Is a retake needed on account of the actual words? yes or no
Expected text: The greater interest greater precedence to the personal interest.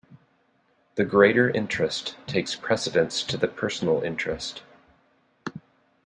yes